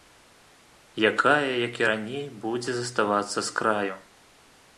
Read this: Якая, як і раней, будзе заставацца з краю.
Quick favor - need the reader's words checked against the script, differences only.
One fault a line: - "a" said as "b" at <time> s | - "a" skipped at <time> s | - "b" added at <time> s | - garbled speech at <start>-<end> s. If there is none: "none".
none